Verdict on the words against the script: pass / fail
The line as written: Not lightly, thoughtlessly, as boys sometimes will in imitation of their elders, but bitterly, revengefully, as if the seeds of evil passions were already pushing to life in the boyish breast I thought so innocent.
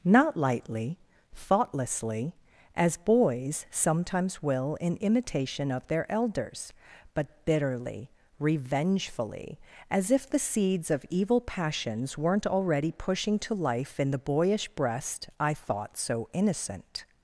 fail